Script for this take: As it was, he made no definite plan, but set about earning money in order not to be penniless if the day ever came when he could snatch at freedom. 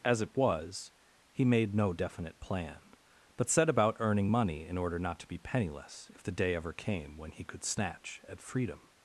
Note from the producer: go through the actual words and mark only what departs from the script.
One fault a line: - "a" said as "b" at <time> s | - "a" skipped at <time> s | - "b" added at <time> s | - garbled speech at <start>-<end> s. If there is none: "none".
none